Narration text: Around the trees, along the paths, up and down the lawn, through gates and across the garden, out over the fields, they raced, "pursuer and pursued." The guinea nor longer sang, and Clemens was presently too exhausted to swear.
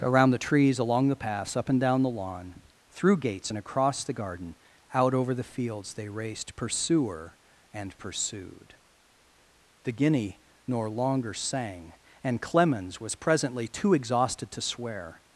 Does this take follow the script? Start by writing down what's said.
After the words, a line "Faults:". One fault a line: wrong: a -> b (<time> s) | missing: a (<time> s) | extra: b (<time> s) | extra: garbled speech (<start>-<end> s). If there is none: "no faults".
Around the trees, along the paths, up and down the lawn, through gates and across the garden, out over the fields, they raced, "pursuer and pursued." The guinea nor longer sang, and Clemens was presently too exhausted to swear.
Faults:
no faults